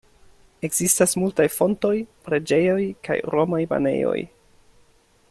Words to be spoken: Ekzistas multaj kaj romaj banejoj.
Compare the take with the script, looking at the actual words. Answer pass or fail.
fail